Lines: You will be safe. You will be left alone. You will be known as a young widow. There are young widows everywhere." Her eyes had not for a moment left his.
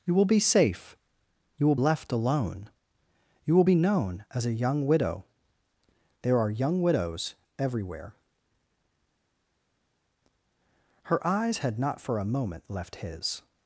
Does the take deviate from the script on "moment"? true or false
false